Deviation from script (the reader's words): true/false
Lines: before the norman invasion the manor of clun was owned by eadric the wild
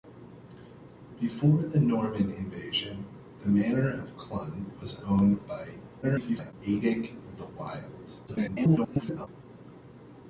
true